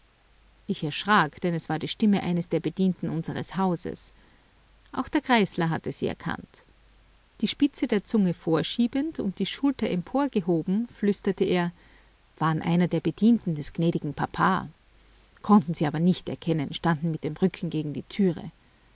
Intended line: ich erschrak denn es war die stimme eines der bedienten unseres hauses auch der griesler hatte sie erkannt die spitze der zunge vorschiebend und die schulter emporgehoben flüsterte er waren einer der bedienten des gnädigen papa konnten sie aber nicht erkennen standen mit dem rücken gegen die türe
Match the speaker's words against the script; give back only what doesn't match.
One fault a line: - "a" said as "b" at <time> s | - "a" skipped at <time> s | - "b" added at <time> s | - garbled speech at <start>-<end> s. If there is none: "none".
none